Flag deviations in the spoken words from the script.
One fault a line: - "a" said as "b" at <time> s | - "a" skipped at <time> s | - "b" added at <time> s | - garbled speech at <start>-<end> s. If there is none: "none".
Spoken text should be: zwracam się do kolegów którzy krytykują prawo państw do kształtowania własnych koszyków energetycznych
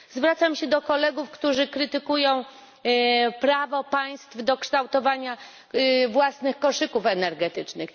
none